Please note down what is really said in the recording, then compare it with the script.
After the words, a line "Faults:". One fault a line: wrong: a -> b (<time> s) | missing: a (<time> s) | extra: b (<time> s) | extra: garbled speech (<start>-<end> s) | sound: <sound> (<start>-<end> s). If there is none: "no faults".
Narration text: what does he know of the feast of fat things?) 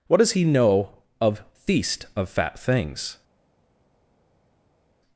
what does he know of feast of fat things?)
Faults:
missing: the (1.4 s)